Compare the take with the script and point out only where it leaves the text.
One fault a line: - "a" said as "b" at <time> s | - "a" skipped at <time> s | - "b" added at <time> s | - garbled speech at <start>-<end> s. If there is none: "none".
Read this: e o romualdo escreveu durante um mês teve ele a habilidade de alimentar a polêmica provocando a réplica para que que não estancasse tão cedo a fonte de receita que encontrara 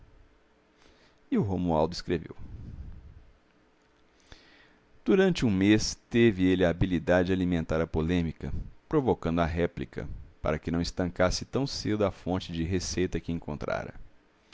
- "que" skipped at 10.7 s